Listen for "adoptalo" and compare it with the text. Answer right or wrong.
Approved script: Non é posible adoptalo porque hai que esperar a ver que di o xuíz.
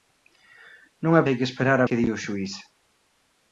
wrong